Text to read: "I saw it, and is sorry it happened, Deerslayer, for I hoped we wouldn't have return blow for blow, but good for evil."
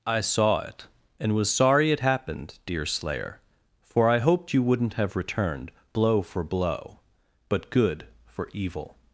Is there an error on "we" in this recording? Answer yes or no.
yes